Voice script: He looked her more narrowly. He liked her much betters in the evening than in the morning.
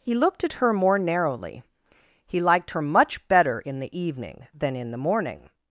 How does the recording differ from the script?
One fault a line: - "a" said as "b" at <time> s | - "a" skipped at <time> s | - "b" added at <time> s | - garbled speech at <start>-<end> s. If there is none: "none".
- "at" added at 0.4 s
- "betters" said as "better" at 3.3 s